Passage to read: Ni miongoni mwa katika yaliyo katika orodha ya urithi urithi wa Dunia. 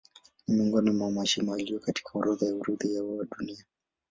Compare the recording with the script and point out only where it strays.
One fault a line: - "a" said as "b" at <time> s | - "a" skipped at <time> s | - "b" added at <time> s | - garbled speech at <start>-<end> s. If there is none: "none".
- "katika" said as "mashimo" at 1.1 s
- "urithi" skipped at 3.0 s